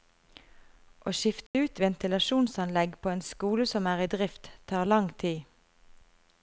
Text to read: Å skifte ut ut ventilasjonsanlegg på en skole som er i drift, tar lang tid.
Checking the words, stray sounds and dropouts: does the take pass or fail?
fail